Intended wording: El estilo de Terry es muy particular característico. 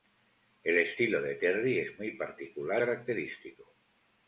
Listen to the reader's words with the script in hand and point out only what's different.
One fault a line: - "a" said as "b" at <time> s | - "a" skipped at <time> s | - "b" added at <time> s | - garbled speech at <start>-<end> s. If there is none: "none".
none